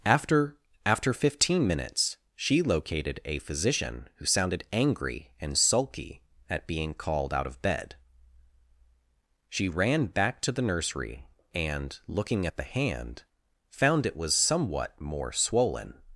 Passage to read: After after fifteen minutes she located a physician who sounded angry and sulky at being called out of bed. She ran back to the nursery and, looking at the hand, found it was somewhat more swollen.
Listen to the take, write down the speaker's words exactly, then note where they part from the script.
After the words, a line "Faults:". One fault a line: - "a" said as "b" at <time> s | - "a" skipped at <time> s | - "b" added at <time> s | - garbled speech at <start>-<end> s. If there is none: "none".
After after fifteen minutes she located a physician who sounded angry and sulky at being called out of bed. She ran back to the nursery and, looking at the hand, found it was somewhat more swollen.
Faults:
none